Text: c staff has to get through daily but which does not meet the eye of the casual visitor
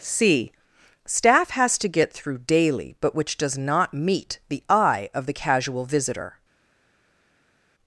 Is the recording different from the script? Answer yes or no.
no